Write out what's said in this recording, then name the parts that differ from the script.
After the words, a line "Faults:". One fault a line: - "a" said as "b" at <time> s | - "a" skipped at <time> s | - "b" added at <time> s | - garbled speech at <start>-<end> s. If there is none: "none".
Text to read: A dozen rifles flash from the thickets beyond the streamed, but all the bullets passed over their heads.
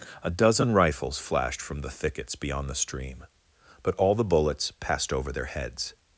A dozen rifles flashed from the thickets beyond the stream, but all the bullets passed over their heads.
Faults:
- "flash" said as "flashed" at 1.2 s
- "streamed" said as "stream" at 2.7 s